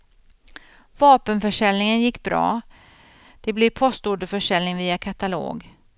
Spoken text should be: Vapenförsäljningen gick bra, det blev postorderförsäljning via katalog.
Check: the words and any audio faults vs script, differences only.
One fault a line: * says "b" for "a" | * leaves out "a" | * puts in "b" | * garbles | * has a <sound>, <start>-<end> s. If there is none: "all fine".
all fine